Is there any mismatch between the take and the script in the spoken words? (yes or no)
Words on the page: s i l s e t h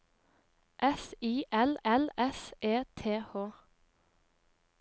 yes